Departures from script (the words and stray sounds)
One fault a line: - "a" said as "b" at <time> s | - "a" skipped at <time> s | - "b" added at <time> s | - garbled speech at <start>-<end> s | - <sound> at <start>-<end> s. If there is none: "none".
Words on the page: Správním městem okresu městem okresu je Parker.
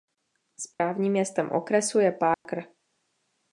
- dropout at 0.7-0.8 s
- "městem okresu" skipped at 2.0 s
- dropout at 2.3-2.5 s